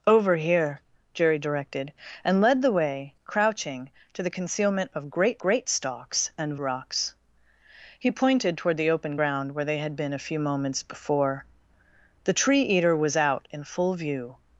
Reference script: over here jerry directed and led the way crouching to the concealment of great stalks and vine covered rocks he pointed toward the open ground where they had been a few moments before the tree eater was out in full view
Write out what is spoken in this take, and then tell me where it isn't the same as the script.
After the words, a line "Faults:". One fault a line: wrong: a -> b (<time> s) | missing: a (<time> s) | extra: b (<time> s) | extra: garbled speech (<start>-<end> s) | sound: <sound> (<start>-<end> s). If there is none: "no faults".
over here jerry directed and led the way crouching to the concealment of great great stalks and rocks he pointed toward the open ground where they had been a few moments before the tree eater was out in full view
Faults:
extra: great (5.4 s)
missing: vine covered (6.6 s)